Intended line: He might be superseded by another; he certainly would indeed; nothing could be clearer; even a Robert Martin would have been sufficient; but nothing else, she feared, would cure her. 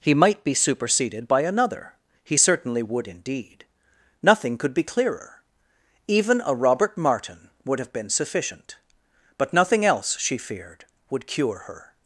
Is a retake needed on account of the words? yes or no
no